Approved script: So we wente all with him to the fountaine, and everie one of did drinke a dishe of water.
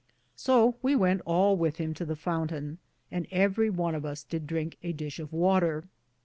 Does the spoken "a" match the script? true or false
true